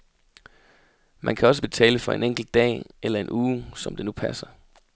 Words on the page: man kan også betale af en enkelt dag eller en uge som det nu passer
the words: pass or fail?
fail